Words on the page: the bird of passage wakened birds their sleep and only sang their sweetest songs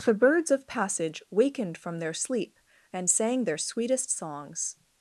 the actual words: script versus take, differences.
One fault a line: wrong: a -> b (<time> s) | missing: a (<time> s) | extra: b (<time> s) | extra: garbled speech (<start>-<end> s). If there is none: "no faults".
wrong: bird -> birds (0.1 s)
wrong: birds -> from (1.8 s)
missing: only (3.1 s)